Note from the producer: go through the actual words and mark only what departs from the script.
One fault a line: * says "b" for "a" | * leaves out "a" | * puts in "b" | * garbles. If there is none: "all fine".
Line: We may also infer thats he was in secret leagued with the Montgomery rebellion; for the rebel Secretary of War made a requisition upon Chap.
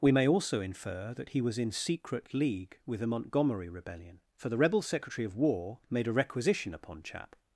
* says "that" for "thats"
* says "league" for "leagued"